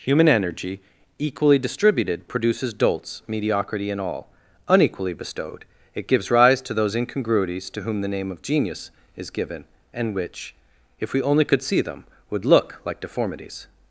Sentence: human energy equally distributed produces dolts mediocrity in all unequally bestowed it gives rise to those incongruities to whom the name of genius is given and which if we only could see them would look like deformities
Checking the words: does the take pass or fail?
pass